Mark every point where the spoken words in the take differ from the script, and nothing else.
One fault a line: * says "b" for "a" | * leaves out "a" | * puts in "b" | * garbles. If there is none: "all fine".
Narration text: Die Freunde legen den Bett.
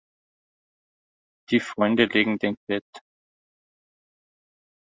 all fine